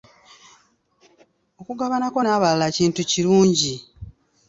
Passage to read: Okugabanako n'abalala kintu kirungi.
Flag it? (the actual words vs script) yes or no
no